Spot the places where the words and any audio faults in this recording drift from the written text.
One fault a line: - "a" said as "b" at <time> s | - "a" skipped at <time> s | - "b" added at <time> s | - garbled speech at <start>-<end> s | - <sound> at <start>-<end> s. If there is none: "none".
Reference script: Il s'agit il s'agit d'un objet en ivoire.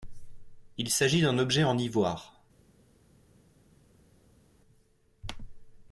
- "il s'agit" skipped at 1.2 s